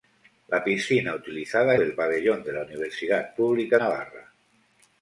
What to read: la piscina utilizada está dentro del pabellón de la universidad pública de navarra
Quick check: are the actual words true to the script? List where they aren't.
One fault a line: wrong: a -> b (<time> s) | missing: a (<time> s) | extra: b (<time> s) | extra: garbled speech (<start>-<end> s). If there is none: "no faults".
missing: está dentro (1.8 s)
missing: de (3.8 s)